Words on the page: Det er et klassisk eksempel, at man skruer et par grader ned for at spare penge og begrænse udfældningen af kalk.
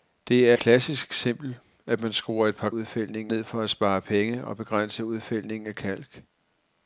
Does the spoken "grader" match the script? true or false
false